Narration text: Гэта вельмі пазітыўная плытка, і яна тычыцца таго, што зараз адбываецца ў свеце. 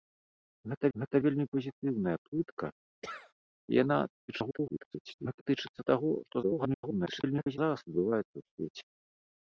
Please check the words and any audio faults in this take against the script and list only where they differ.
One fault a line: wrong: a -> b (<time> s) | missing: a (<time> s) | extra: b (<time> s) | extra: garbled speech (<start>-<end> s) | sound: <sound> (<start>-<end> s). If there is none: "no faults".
extra: гэта (1.0 s)
sound: sneeze (3.0-3.3 s)
extra: garbled speech (4.3-5.4 s)
extra: garbled speech (6.4-7.6 s)